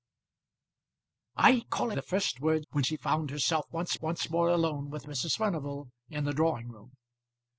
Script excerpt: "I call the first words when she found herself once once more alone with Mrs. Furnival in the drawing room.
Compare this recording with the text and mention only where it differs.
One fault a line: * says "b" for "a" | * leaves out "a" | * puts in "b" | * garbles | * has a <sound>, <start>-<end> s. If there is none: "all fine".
all fine